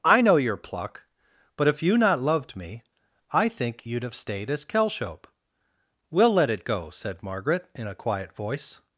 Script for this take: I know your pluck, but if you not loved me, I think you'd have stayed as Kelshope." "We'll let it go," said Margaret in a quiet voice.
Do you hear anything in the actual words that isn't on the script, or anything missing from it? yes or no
no